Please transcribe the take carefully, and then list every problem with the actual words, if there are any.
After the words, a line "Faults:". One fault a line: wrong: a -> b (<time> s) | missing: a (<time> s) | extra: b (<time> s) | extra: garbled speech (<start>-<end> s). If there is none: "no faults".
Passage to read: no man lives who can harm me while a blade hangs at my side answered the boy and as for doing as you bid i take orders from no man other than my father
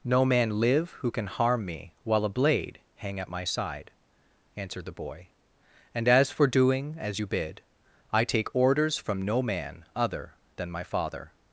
no man live who can harm me while a blade hang at my side answered the boy and as for doing as you bid i take orders from no man other than my father
Faults:
wrong: lives -> live (0.6 s)
wrong: hangs -> hang (3.0 s)